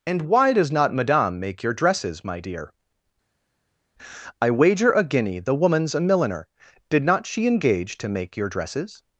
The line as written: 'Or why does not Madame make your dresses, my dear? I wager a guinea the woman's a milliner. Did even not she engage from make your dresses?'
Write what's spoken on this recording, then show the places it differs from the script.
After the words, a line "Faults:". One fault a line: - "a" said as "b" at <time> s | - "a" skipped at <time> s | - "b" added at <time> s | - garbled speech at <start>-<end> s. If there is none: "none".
'And why does not Madame make your dresses, my dear? I wager a guinea the woman's a milliner. Did not she engage to make your dresses?'
Faults:
- "Or" said as "And" at 0.1 s
- "even" skipped at 7.0 s
- "from" said as "to" at 8.0 s